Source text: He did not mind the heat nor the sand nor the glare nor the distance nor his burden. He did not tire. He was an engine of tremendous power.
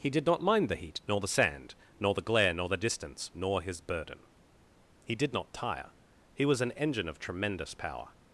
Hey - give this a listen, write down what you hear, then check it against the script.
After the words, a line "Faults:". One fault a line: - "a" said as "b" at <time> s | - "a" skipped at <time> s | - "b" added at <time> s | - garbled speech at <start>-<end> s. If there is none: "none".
He did not mind the heat nor the sand nor the glare nor the distance nor his burden. He did not tire. He was an engine of tremendous power.
Faults:
none